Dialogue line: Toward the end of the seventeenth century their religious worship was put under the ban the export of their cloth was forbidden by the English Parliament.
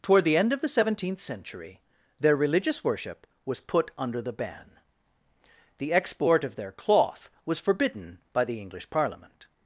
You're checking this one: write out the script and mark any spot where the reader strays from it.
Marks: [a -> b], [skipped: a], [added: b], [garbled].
Toward the end of the seventeenth century their religious worship was put under the ban the export of their cloth was forbidden by the English Parliament.